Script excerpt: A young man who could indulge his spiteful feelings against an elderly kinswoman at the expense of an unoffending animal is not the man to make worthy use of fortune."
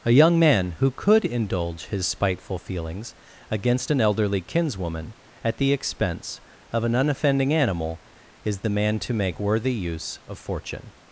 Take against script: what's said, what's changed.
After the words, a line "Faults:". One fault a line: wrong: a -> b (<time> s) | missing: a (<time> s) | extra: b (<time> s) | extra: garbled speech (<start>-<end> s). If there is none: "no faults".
A young man who could indulge his spiteful feelings against an elderly kinswoman at the expense of an unoffending animal is the man to make worthy use of fortune."
Faults:
missing: not (8.6 s)